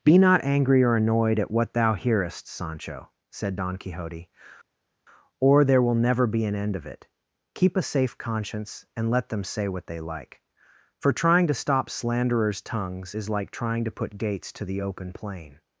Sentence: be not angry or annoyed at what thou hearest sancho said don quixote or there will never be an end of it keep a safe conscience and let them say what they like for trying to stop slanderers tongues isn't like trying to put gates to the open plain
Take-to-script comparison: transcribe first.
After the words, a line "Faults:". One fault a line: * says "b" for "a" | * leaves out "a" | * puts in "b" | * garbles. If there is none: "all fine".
be not angry or annoyed at what thou hearest sancho said don quixote or there will never be an end of it keep a safe conscience and let them say what they like for trying to stop slanderers tongues is like trying to put gates to the open plain
Faults:
* says "is" for "isn't"